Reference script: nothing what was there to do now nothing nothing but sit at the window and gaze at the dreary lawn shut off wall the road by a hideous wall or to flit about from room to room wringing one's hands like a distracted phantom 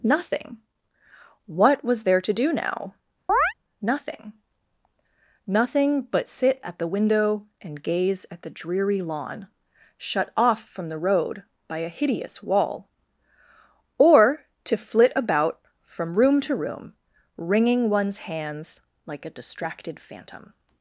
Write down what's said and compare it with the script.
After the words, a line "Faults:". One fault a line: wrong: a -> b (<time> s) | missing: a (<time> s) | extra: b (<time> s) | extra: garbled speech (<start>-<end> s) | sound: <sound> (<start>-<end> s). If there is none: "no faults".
nothing what was there to do now nothing nothing but sit at the window and gaze at the dreary lawn shut off from the road by a hideous wall or to flit about from room to room wringing one's hands like a distracted phantom
Faults:
sound: chirp (3.3-3.5 s)
wrong: wall -> from (10.6 s)